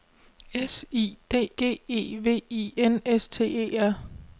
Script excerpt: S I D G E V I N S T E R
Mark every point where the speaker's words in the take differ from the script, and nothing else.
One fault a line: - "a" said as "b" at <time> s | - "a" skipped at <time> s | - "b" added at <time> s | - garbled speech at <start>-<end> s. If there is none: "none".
none